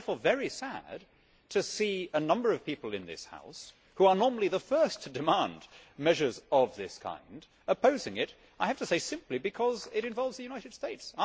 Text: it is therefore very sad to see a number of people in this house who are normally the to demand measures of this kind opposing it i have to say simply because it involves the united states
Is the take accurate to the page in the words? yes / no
no